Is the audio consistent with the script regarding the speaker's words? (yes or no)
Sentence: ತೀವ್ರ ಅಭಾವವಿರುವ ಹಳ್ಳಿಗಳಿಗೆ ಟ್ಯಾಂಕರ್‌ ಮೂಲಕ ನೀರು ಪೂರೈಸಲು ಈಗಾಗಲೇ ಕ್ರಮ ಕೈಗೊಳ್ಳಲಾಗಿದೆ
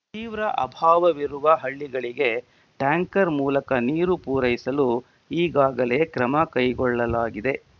yes